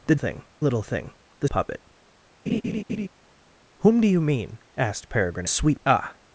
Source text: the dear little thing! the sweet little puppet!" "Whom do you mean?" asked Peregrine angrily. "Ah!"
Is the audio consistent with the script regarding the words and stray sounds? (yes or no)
no